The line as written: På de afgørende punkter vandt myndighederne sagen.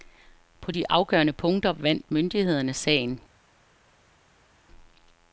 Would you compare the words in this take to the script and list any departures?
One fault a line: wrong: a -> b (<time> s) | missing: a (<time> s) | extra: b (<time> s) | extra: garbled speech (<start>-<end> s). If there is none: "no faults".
no faults